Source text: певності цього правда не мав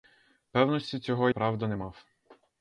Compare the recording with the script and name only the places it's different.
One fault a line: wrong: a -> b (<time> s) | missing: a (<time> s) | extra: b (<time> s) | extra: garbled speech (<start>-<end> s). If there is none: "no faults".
no faults